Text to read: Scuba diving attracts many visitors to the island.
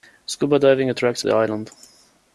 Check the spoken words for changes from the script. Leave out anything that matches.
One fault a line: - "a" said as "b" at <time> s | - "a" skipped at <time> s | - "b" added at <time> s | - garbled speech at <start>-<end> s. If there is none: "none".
- "many visitors to" skipped at 1.3 s